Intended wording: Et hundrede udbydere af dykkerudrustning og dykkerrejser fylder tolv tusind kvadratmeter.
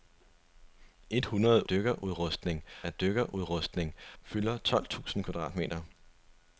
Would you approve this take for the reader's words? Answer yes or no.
no